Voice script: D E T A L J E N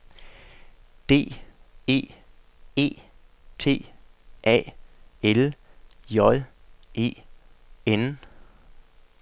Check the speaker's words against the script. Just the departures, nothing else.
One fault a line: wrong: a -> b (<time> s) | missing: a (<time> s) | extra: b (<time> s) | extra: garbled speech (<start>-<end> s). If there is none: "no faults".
extra: E (2.7 s)